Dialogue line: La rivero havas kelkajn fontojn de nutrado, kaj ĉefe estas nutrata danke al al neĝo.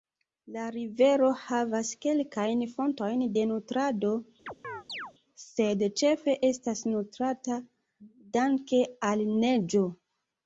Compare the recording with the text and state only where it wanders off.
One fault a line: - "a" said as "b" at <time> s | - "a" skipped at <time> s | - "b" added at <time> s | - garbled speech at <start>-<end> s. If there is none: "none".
- "kaj" said as "sed" at 5.4 s
- "al" skipped at 9.3 s